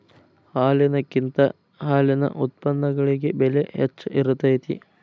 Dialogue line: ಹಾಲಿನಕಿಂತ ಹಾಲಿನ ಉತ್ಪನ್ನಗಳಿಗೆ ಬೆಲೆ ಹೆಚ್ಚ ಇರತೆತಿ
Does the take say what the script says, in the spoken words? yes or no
yes